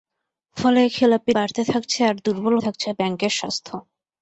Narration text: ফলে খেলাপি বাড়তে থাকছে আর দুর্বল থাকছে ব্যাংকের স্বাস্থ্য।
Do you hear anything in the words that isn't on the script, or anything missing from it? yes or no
no